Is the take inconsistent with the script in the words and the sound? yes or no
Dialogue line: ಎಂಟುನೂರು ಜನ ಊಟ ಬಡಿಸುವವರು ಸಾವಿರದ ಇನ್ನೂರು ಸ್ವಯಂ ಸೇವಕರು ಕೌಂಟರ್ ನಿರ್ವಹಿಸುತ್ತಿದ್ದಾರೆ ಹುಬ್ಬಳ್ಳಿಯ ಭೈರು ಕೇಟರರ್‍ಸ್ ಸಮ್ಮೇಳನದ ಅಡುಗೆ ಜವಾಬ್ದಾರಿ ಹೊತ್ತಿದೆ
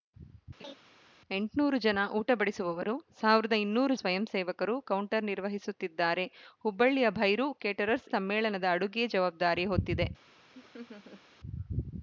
yes